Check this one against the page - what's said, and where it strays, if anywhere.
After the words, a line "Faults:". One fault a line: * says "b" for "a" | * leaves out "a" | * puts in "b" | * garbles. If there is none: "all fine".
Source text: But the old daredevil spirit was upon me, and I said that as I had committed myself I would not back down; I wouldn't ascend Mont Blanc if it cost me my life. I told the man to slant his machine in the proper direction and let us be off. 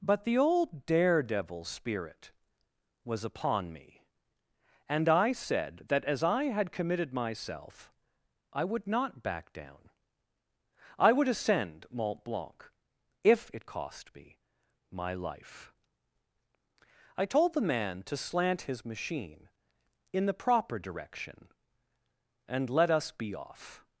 But the old daredevil spirit was upon me, and I said that as I had committed myself I would not back down; I would ascend Mont Blanc if it cost me my life. I told the man to slant his machine in the proper direction and let us be off.
Faults:
* says "would" for "wouldn't"